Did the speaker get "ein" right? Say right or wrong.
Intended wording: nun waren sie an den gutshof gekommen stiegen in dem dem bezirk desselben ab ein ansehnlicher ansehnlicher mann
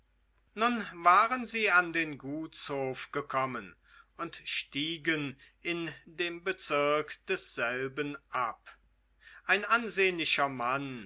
right